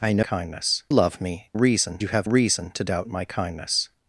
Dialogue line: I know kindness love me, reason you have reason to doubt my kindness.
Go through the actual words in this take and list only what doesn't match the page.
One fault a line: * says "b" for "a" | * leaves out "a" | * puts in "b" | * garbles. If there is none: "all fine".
all fine